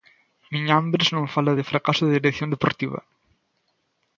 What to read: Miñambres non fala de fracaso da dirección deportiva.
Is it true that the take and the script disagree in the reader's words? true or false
false